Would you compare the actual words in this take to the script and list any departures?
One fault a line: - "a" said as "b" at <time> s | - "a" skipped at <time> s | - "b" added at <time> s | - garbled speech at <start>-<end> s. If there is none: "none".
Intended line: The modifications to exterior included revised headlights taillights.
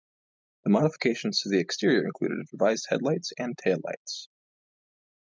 - "the" added at 1.5 s
- "and" added at 3.4 s